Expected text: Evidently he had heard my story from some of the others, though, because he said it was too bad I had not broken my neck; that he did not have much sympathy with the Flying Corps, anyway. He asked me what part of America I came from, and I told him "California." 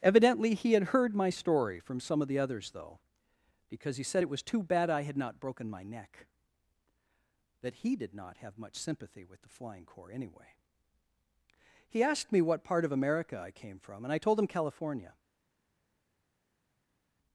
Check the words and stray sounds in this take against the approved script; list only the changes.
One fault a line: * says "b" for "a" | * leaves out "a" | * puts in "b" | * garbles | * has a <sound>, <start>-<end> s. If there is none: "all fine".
all fine